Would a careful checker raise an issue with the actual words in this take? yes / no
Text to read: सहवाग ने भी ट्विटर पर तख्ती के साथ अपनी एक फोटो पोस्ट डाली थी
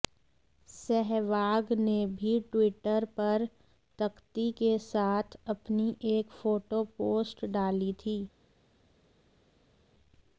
no